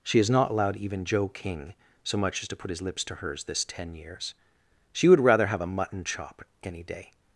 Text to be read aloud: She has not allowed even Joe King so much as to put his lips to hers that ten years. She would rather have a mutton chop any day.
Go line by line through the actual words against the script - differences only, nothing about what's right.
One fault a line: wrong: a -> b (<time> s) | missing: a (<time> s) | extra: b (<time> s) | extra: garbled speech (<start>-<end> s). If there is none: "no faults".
wrong: that -> this (3.4 s)